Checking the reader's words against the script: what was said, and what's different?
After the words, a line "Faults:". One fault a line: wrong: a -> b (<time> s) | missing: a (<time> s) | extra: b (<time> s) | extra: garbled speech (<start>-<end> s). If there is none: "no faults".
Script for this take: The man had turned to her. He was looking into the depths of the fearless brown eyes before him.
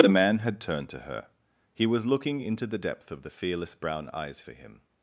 The man had turned to her. He was looking into the depth of the fearless brown eyes for him.
Faults:
wrong: depths -> depth (2.8 s)
wrong: before -> for (4.4 s)